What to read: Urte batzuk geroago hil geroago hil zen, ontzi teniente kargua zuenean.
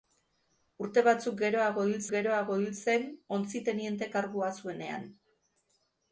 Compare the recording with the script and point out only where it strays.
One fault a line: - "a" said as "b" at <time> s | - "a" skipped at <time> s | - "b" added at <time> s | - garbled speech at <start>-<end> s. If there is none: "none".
none